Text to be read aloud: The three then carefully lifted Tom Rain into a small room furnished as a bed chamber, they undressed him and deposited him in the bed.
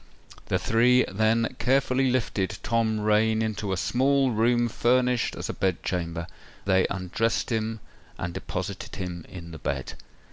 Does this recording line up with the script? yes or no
yes